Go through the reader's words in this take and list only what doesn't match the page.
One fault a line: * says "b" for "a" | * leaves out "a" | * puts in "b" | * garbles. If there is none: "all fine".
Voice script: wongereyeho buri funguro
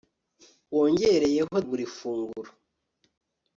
all fine